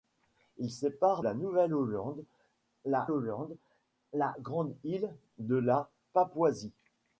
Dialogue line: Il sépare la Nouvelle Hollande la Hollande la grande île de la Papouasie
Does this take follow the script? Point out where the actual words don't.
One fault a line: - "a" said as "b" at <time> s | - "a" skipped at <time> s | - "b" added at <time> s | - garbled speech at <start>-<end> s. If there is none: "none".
none